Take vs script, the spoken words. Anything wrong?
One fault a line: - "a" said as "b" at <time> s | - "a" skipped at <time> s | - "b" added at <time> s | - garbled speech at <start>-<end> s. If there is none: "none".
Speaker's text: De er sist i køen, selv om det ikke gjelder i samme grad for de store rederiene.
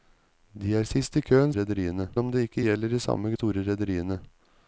- "selv" said as "rederiene" at 1.6 s
- "grad for de" skipped at 3.3 s